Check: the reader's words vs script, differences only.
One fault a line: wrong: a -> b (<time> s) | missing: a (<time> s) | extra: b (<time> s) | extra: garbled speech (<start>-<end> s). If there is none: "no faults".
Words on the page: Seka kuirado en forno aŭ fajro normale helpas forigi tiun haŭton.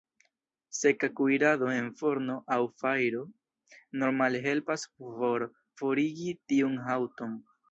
extra: por (5.0 s)